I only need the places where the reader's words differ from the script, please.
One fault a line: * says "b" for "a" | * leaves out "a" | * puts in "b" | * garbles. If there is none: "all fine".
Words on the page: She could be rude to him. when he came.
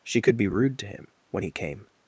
all fine